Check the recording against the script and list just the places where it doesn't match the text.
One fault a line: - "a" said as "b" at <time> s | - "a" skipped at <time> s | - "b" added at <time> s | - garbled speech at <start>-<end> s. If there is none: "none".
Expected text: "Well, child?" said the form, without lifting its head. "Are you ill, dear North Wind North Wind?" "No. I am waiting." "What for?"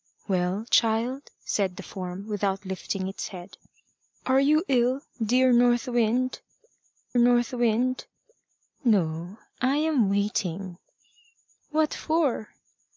none